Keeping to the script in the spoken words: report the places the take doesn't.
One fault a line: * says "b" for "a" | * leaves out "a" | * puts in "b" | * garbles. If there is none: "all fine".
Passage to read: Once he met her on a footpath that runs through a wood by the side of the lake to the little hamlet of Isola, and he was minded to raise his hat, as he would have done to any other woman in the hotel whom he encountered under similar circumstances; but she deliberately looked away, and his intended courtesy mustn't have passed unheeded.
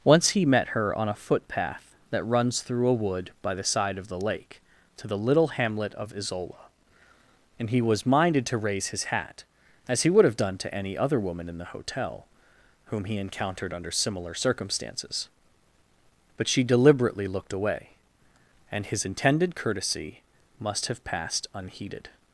* says "must" for "mustn't"